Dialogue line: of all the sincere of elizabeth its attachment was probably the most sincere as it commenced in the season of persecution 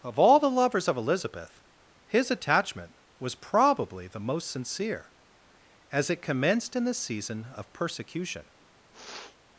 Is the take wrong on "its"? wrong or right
wrong